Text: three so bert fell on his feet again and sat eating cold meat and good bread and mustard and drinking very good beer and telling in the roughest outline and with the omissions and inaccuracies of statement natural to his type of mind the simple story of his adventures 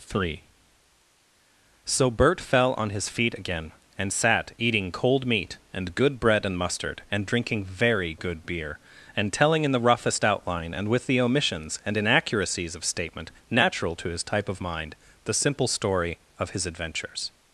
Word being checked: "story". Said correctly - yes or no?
yes